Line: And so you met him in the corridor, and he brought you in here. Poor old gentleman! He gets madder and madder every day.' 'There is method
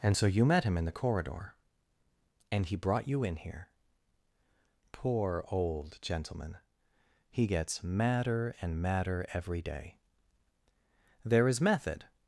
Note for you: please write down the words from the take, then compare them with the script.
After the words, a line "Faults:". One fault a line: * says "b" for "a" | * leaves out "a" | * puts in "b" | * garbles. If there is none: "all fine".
And so you met him in the corridor, and he brought you in here. Poor old gentleman! He gets madder and madder every day.' 'There is method
Faults:
all fine